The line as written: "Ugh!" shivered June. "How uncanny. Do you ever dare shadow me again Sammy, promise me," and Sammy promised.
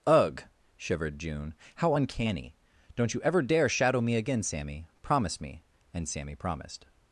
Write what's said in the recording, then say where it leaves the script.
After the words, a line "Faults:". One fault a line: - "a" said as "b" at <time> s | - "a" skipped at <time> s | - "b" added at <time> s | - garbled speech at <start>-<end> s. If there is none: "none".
"Ugh!" shivered June. "How uncanny. Don't you ever dare shadow me again Sammy, promise me," and Sammy promised.
Faults:
- "Do" said as "Don't" at 3.0 s